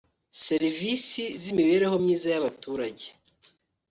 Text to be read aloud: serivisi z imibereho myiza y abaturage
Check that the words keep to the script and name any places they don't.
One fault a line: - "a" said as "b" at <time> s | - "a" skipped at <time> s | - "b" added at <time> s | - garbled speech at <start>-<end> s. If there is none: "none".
none